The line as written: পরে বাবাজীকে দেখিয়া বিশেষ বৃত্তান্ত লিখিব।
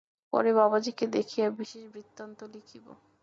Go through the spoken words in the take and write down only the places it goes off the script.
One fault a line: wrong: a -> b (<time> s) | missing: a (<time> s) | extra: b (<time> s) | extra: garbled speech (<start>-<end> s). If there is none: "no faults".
no faults